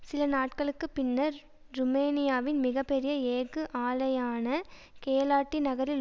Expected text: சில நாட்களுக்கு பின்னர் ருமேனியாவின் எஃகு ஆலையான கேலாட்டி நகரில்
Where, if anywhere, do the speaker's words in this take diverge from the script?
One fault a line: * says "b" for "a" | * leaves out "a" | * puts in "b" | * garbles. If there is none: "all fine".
* puts in "மிக பெரிய"